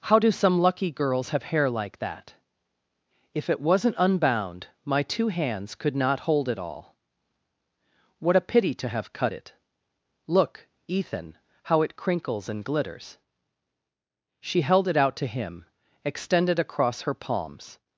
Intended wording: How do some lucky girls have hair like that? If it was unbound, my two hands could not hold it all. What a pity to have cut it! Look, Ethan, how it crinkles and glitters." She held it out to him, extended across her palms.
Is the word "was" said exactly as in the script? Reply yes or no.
no